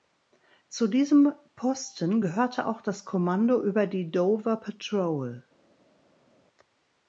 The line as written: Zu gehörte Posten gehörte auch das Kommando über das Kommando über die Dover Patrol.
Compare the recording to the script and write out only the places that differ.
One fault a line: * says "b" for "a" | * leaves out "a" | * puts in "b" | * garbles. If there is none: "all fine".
* says "diesem" for "gehörte"
* leaves out "das Kommando über"